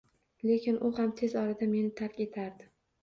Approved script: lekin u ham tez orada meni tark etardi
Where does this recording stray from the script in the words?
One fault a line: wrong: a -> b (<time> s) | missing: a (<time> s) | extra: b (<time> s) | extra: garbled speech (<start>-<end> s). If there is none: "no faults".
no faults